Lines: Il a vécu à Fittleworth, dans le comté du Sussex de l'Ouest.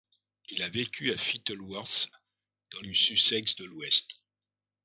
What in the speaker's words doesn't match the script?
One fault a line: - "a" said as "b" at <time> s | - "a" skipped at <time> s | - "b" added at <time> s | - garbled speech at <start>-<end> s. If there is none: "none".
- "le comté" skipped at 2.8 s